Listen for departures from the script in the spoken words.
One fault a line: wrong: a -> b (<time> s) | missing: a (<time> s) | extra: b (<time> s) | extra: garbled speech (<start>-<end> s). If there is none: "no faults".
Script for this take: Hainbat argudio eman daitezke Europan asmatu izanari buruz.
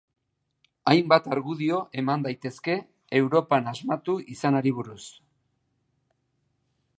no faults